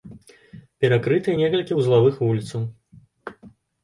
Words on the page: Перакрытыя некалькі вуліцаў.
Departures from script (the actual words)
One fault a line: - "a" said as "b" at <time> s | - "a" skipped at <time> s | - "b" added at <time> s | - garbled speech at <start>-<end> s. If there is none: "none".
- "вузлавых" added at 1.8 s